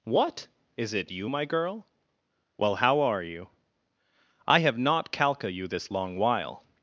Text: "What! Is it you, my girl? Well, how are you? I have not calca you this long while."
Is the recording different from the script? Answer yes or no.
no